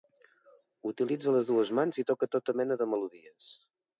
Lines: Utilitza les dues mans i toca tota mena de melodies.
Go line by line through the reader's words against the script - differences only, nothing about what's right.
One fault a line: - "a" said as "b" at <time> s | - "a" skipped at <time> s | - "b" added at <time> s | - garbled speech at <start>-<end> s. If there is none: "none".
none